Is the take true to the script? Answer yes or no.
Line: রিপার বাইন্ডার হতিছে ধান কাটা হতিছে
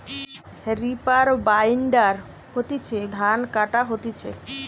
yes